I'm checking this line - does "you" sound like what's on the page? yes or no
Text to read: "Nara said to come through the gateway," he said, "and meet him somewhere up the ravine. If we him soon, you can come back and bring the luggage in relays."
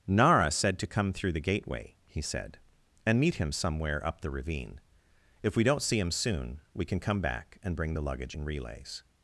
no